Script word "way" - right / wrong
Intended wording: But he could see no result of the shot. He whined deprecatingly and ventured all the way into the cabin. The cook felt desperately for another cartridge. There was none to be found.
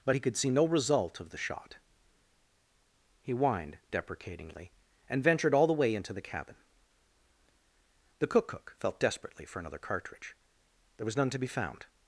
right